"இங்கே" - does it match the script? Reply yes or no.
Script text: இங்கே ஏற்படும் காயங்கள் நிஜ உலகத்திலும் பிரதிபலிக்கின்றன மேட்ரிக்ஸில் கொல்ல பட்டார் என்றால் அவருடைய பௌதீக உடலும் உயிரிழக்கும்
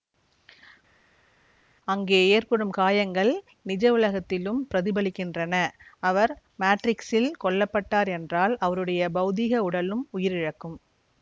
no